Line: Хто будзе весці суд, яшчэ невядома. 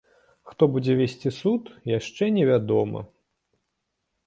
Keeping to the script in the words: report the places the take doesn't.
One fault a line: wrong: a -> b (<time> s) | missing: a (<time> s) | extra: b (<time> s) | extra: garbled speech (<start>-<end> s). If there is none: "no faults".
no faults